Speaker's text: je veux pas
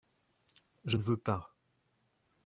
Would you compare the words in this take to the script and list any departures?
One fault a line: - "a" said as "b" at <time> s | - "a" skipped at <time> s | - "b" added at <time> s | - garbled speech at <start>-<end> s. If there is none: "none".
- "ne" added at 0.9 s